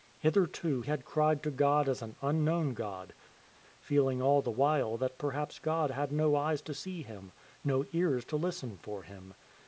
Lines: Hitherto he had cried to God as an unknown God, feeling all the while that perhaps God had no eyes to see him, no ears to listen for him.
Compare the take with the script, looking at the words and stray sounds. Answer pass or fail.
fail